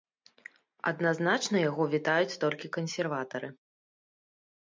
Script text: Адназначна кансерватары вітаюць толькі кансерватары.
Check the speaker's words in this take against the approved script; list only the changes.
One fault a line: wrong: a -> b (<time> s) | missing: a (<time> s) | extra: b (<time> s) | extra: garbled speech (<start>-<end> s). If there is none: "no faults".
wrong: кансерватары -> яго (1.7 s)